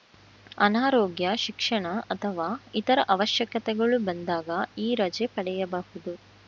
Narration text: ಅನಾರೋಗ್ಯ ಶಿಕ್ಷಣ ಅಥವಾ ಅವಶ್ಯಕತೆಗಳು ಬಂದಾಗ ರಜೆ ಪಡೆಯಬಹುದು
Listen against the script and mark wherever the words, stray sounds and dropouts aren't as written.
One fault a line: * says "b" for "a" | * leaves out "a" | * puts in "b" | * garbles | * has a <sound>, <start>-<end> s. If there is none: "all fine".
* puts in "ಇತರ"
* puts in "ಈ"